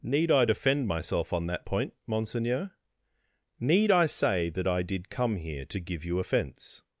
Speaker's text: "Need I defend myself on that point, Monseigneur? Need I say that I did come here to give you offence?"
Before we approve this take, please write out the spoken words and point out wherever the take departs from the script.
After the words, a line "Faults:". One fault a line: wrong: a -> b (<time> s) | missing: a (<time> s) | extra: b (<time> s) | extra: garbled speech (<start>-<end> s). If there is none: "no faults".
"Need I defend myself on that point, Monseigneur? Need I say that I did come here to give you offence?"
Faults:
no faults